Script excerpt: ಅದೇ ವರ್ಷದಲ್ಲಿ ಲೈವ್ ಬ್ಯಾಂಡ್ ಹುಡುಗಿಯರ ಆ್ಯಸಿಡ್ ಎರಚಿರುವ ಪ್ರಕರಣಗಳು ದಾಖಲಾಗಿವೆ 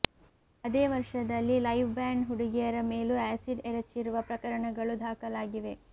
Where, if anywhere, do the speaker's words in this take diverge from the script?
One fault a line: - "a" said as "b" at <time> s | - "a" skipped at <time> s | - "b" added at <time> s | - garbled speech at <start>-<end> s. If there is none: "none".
- "ಮೇಲೂ" added at 2.9 s